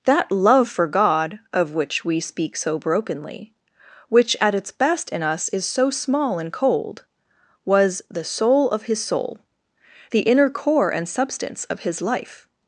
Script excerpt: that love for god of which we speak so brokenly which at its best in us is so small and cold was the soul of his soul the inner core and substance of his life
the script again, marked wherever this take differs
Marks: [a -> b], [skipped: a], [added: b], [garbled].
that love for god of which we speak so brokenly which at its best in us is so small and cold was the soul of his soul the inner core and substance of his life